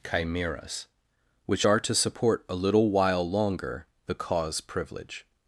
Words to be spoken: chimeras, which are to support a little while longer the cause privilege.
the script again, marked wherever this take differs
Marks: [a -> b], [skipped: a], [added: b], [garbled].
chimeras, which are to support a little while longer the cause privilege.